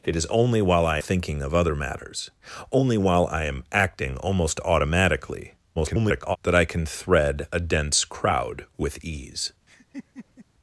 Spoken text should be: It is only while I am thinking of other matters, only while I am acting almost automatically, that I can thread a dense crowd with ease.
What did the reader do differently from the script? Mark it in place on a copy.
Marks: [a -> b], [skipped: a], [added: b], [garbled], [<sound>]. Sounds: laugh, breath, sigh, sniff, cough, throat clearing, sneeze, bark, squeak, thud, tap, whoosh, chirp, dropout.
It is only while I [skipped: am] thinking of other matters, only while I am acting almost automatically, [garbled] that I can thread a dense crowd with ease. [laugh]